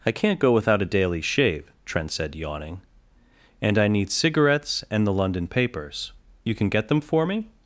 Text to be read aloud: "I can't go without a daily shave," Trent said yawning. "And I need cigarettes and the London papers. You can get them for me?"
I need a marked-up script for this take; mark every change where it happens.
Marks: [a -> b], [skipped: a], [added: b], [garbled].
"I can't go without a daily shave," Trent said yawning. "And I need cigarettes and the London papers. You can get them for me?"